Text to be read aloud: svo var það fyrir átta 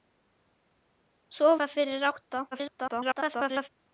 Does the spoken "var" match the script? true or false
false